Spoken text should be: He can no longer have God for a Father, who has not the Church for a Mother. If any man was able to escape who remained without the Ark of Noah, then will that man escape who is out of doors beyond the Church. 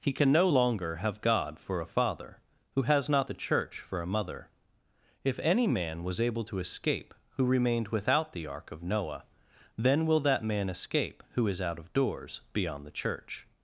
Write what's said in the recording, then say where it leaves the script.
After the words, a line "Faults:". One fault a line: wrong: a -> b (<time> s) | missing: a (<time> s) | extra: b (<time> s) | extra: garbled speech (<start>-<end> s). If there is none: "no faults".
He can no longer have God for a Father, who has not the Church for a Mother. If any man was able to escape who remained without the Ark of Noah, then will that man escape who is out of doors beyond the Church.
Faults:
no faults